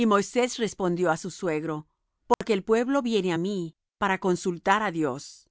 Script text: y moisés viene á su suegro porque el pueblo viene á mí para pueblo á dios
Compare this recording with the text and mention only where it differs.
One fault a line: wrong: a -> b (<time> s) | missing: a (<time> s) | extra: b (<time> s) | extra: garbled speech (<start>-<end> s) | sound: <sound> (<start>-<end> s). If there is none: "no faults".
wrong: viene -> respondió (0.6 s)
sound: dropout (2.3-2.4 s)
wrong: pueblo -> consultar (4.2 s)